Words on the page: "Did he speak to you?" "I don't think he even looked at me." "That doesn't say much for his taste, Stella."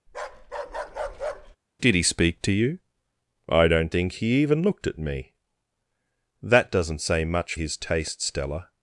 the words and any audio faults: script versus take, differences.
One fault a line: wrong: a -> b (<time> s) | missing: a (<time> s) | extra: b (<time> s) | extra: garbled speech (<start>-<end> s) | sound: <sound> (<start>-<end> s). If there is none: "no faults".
sound: bark (0.1-1.6 s)
missing: for (7.5 s)